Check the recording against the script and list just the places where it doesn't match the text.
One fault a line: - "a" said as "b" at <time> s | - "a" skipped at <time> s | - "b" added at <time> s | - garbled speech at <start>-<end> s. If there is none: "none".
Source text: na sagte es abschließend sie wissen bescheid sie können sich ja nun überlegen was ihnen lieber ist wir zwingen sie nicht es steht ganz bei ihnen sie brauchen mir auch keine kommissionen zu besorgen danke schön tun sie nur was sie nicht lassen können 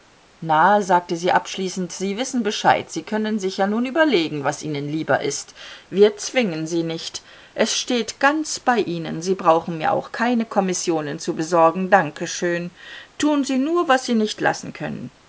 - "es" said as "sie" at 1.1 s